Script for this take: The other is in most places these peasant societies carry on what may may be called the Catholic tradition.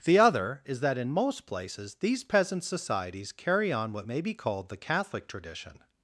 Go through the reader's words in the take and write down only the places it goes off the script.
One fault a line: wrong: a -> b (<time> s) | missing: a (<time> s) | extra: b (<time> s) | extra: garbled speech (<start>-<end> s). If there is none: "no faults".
extra: that (0.8 s)
missing: may (4.2 s)